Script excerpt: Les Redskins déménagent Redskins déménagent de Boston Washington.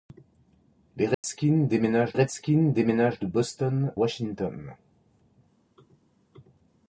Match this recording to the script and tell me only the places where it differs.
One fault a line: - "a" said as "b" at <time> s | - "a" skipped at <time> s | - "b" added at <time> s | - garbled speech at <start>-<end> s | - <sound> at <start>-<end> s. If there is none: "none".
- dropout at 1.1-1.2 s